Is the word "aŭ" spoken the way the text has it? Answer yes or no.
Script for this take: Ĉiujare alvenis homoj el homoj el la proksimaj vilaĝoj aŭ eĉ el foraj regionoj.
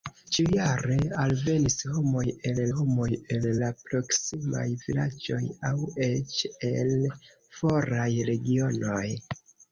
yes